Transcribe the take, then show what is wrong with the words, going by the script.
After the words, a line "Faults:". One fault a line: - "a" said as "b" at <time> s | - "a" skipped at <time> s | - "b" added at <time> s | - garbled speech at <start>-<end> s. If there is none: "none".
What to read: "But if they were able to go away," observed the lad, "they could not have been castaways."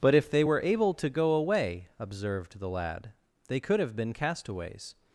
"But if they were able to go away," observed the lad, "they could have been castaways."
Faults:
- "not" skipped at 3.8 s